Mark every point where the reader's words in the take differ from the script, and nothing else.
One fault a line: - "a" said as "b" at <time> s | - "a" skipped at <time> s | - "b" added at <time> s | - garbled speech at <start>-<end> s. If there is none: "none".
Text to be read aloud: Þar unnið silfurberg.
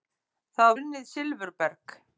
none